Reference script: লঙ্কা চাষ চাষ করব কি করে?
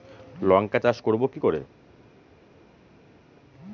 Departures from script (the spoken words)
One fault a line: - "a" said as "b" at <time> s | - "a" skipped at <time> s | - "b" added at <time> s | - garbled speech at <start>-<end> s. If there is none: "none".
- "চাষ" skipped at 1.0 s